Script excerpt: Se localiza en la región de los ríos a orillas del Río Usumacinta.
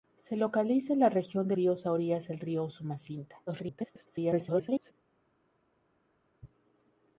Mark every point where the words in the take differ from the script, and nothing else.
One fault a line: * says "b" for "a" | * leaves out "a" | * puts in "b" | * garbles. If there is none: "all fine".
* leaves out "los"
* garbles